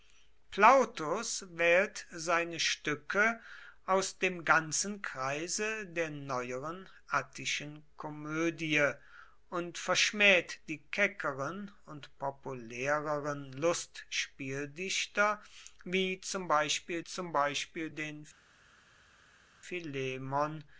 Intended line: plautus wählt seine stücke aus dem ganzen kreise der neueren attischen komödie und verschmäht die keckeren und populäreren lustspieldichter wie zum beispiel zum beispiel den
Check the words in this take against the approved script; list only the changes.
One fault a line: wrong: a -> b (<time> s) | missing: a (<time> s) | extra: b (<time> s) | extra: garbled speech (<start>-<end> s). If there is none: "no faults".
no faults